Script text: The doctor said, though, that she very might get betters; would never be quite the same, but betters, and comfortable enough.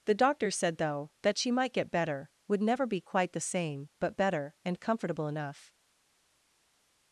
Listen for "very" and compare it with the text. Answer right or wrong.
wrong